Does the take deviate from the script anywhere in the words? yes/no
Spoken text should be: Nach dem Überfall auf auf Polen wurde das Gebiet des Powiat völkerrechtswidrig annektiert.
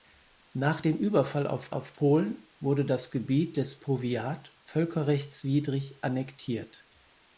no